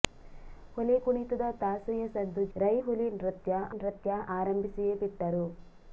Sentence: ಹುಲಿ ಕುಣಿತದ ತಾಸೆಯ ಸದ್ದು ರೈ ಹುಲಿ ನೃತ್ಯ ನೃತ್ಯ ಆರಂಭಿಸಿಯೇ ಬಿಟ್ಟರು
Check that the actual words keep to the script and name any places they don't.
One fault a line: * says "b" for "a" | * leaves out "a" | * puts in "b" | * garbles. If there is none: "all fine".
all fine